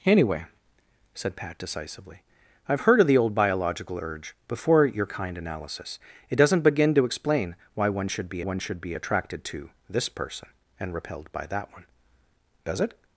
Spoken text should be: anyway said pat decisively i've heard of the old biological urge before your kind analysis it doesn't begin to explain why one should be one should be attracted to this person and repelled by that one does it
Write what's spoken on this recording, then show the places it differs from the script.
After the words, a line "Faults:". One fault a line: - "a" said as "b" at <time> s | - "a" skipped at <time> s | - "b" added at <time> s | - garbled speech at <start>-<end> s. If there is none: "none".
anyway said pat decisively i've heard of the old biological urge before your kind analysis it doesn't begin to explain why one should be one should be attracted to this person and repelled by that one does it
Faults:
none